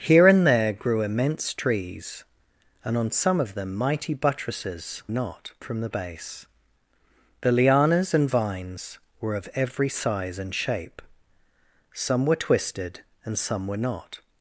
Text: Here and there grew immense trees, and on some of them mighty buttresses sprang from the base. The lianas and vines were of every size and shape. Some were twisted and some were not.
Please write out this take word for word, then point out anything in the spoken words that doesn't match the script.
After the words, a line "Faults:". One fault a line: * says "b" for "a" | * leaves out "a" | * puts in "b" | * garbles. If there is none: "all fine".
Here and there grew immense trees, and on some of them mighty buttresses not from the base. The lianas and vines were of every size and shape. Some were twisted and some were not.
Faults:
* says "not" for "sprang"